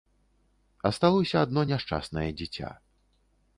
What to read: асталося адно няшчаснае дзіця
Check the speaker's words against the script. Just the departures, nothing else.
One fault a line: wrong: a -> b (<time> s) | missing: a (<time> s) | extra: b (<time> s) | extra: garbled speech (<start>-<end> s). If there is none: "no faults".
no faults